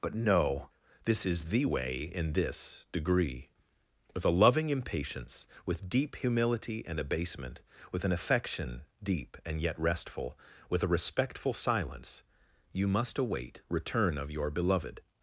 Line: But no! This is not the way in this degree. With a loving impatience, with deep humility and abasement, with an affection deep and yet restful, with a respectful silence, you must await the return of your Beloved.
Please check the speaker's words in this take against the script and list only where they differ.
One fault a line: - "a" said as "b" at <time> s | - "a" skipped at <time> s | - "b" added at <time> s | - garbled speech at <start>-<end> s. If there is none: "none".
- "not" skipped at 1.5 s
- "the" skipped at 13.6 s